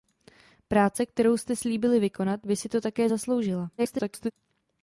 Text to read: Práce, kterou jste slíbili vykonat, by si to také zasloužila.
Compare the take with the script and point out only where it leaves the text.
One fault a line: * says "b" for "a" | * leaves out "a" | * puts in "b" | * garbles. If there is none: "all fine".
* garbles